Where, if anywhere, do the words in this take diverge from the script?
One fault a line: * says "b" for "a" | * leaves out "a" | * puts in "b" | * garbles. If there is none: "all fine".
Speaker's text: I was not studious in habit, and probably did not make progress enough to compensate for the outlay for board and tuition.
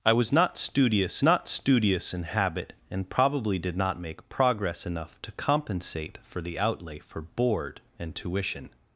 * puts in "not studious"